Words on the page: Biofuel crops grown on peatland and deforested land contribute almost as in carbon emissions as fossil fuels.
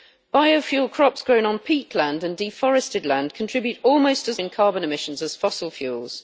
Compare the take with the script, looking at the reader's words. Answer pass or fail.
pass